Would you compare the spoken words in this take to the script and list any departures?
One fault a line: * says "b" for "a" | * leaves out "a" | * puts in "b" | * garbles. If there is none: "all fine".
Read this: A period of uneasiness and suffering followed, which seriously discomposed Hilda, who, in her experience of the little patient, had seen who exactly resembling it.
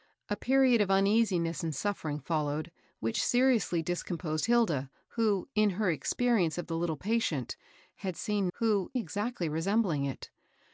all fine